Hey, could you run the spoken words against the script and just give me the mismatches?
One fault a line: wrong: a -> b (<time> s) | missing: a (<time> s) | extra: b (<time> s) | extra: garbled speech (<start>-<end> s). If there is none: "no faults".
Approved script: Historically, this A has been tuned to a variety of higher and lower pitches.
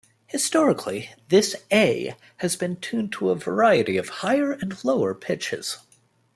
no faults